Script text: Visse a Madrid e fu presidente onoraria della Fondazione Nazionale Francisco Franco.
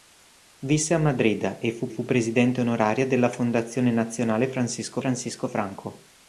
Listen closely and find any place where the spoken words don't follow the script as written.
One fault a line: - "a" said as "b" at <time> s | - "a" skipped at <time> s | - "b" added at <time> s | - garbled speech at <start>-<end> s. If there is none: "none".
- "fu" added at 1.9 s
- "Francisco" added at 5.0 s